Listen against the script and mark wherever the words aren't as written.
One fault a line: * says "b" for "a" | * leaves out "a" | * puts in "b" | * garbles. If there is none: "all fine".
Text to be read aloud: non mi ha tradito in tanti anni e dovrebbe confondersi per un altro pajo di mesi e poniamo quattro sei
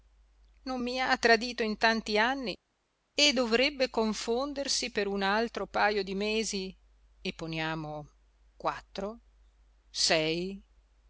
all fine